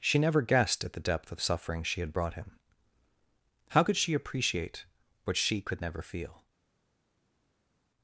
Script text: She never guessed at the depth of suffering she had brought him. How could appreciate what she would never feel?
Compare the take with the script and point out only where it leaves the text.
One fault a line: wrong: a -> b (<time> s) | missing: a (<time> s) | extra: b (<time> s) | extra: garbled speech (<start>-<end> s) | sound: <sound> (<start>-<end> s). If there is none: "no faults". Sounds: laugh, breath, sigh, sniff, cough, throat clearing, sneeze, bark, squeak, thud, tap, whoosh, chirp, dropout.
extra: she (4.0 s)
wrong: would -> could (5.6 s)